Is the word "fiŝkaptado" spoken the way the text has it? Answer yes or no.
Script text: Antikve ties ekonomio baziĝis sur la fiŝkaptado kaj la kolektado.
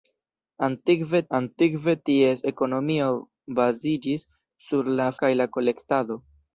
no